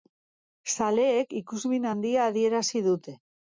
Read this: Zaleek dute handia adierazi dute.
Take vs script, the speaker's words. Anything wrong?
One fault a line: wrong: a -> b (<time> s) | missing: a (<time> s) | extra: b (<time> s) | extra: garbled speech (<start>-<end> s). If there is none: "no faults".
wrong: dute -> ikusmin (1.4 s)